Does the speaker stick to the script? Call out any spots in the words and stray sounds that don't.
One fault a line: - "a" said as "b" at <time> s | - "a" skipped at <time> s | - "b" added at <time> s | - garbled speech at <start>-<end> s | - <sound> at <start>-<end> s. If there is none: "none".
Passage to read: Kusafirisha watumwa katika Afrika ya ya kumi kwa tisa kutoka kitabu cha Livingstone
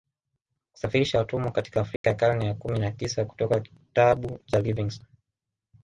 - dropout at 2.0-2.0 s
- "karne" added at 2.1 s
- "kwa" said as "na" at 2.8 s